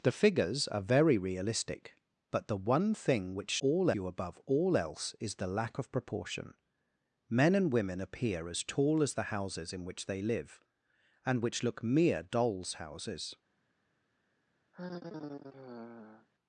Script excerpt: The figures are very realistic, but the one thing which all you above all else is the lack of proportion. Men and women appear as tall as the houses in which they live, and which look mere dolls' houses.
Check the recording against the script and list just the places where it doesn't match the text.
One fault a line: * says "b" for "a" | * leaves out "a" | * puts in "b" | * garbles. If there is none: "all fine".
all fine